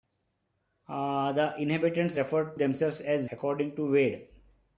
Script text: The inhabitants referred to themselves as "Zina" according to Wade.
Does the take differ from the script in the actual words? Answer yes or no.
yes